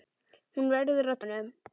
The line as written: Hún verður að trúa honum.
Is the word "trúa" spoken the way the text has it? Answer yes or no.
no